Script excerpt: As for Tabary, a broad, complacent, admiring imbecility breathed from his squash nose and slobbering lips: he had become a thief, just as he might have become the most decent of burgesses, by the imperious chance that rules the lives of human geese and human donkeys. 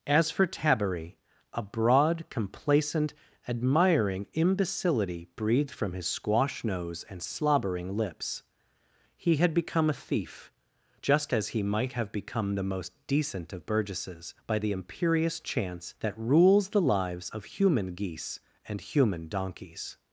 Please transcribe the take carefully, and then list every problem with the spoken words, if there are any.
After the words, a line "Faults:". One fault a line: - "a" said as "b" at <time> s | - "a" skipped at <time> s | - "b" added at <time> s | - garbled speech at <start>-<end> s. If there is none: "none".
As for Tabary, a broad, complacent, admiring imbecility breathed from his squash nose and slobbering lips: he had become a thief, just as he might have become the most decent of burgesses, by the imperious chance that rules the lives of human geese and human donkeys.
Faults:
none